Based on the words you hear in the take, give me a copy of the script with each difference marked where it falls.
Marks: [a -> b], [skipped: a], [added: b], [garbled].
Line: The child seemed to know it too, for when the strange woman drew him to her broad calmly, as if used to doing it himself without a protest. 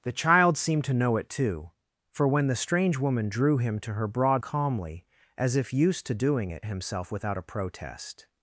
The child seemed to know it too, for when the strange woman drew him to her broad calmly, as if used to doing it himself without a protest.